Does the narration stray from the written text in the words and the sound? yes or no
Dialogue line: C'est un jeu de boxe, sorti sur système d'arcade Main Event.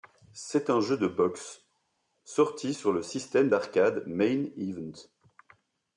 yes